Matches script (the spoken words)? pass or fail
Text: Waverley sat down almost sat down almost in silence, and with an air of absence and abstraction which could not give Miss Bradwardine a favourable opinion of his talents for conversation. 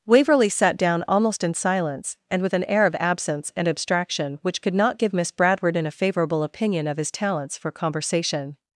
fail